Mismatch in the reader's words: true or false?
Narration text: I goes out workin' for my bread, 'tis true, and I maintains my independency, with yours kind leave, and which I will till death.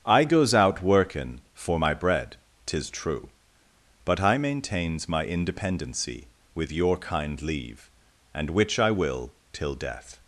true